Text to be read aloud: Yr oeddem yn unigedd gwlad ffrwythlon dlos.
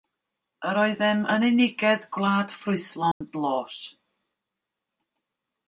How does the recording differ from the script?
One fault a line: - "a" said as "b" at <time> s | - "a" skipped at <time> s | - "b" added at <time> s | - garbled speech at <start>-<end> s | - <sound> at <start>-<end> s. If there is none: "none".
- dropout at 3.1-3.2 s